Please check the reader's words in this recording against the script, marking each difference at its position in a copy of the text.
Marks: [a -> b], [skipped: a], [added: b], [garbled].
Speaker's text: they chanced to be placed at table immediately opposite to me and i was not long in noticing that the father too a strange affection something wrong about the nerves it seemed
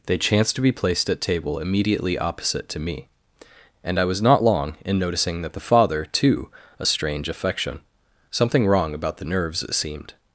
they chanced to be placed at table immediately opposite to me and i was not long in noticing that the father too a strange affection something wrong about the nerves it seemed